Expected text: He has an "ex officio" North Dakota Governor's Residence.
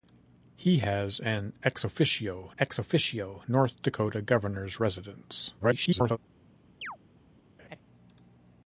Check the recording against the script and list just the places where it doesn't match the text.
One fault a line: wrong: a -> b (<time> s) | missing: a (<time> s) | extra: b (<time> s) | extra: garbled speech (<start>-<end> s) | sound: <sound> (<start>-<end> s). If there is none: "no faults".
extra: ex officio (2.6 s)
extra: garbled speech (5.6-6.2 s)
sound: chirp (6.8-7.0 s)
sound: laugh (7.6-7.8 s)